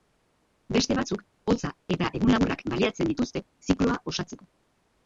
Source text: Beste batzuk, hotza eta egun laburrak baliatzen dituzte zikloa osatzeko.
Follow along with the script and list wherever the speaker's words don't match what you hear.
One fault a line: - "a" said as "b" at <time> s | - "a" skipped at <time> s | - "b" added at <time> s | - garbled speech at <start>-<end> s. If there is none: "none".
none